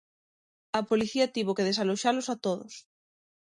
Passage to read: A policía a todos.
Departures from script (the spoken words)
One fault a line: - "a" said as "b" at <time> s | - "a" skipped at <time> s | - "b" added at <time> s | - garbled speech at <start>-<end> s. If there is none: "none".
- "tivo que desaloxalos" added at 1.4 s